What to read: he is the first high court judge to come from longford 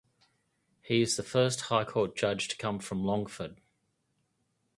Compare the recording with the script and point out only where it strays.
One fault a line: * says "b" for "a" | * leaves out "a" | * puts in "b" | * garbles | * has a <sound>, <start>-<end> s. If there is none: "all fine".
all fine